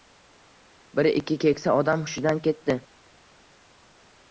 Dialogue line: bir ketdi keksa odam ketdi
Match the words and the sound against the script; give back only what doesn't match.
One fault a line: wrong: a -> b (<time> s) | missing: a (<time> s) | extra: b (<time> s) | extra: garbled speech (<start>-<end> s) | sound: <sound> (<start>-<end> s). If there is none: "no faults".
wrong: ketdi -> ikki (1.1 s)
extra: hushidan (2.1 s)